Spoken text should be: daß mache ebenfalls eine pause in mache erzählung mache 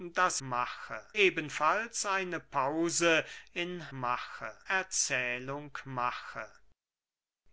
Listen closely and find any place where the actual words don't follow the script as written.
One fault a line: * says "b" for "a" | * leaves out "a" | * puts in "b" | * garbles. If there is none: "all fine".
all fine